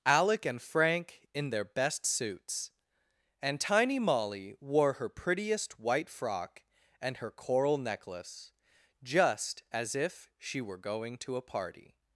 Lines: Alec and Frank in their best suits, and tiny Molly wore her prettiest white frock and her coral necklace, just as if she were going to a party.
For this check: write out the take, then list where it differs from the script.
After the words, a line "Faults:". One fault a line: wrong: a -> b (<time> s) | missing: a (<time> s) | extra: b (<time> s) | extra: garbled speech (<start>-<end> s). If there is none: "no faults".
Alec and Frank in their best suits, and tiny Molly wore her prettiest white frock and her coral necklace, just as if she were going to a party.
Faults:
no faults